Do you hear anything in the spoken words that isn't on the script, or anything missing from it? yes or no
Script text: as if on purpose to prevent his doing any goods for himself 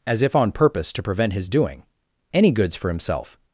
no